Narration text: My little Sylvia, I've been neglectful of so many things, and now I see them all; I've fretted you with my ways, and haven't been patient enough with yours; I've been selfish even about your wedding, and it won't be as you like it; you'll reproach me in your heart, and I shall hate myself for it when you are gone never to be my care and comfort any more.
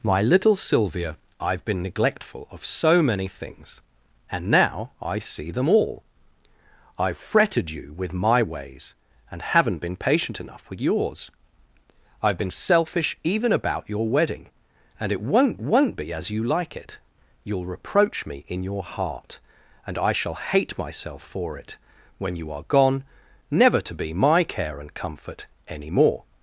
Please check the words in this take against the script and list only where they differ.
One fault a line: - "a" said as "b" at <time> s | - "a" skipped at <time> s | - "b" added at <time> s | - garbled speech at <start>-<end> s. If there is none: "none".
- "won't" added at 15.6 s